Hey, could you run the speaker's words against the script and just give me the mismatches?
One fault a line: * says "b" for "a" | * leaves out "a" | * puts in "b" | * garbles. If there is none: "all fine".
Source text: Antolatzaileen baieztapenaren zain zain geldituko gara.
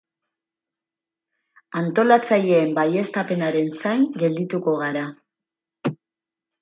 * leaves out "zain"